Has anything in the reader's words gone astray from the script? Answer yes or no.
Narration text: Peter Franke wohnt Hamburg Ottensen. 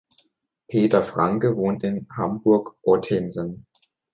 yes